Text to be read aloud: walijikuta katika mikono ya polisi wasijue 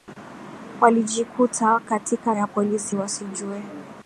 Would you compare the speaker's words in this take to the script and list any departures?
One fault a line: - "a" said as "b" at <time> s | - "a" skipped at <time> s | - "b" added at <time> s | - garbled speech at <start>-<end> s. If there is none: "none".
- "mikono" skipped at 2.4 s